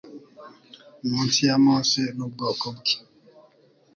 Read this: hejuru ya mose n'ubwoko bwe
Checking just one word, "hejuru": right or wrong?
wrong